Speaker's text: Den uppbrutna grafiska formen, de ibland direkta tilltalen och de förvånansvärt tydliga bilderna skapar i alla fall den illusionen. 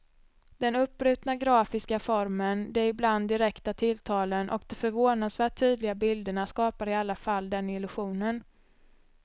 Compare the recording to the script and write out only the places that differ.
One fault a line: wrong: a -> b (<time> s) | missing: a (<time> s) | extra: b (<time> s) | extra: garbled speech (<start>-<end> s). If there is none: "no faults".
no faults